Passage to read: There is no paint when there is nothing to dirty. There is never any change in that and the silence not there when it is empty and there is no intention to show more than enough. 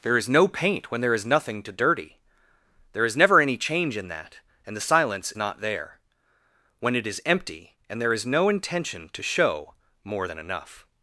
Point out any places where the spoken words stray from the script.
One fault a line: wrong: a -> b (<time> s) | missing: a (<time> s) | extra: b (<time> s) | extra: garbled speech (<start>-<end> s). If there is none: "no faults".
no faults